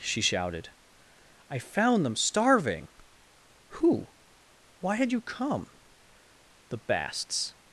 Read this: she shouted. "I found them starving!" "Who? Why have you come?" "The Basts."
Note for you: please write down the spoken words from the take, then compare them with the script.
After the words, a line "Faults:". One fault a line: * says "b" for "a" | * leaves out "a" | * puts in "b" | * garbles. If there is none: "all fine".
she shouted. "I found them starving!" "Who? Why had you come?" "The Basts."
Faults:
* says "had" for "have"